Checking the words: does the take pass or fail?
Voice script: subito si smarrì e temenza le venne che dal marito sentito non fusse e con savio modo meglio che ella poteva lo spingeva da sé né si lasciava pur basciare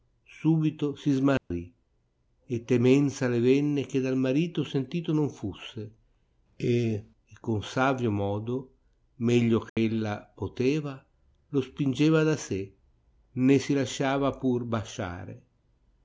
pass